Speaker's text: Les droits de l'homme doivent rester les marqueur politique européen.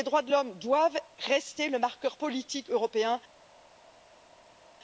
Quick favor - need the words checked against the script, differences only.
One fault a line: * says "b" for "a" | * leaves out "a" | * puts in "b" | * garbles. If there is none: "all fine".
* says "le" for "les"